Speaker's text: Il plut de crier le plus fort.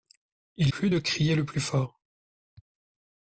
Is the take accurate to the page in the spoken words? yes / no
yes